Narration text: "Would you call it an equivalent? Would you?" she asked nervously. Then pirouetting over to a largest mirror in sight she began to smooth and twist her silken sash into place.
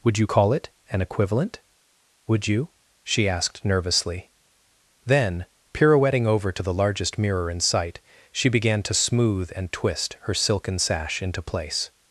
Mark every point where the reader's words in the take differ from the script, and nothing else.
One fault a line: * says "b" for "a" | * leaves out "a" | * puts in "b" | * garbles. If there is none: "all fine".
* says "the" for "a"